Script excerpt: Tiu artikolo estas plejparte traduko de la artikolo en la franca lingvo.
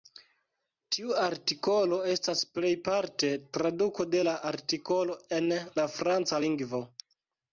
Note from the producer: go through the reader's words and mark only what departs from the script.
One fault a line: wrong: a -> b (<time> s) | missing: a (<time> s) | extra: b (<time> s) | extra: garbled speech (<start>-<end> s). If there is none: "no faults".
no faults